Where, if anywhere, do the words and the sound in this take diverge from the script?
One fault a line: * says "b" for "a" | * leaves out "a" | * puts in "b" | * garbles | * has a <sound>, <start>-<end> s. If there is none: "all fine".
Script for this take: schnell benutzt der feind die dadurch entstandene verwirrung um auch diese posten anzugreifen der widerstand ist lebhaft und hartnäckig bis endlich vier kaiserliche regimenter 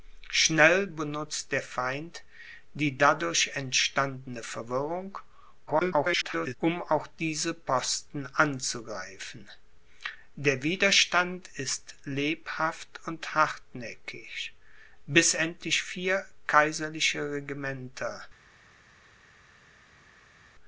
* garbles